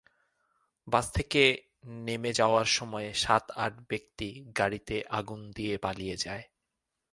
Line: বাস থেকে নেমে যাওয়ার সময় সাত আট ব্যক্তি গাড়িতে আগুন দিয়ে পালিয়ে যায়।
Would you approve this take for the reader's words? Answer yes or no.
yes